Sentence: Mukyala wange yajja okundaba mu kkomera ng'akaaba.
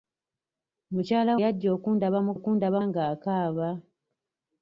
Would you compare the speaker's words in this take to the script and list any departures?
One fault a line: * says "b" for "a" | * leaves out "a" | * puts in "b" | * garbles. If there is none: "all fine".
* leaves out "wange"
* says "okundaba" for "kkomera"